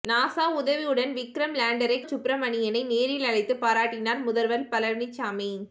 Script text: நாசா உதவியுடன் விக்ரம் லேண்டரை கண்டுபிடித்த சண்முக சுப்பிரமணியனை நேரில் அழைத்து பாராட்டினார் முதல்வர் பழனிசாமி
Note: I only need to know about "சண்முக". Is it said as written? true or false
false